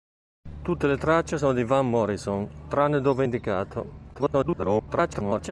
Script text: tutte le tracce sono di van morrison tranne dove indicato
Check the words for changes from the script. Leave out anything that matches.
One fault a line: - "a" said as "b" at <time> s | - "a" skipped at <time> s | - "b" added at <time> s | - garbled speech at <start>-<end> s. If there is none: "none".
- garbled speech at 4.1-5.5 s